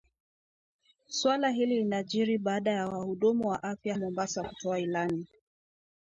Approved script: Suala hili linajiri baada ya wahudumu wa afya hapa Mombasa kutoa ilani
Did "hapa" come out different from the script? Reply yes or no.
yes